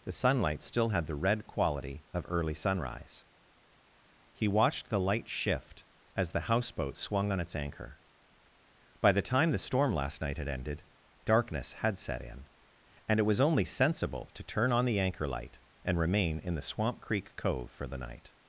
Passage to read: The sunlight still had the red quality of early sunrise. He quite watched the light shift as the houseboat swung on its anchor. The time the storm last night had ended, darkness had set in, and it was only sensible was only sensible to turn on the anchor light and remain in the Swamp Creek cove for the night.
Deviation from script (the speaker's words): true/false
true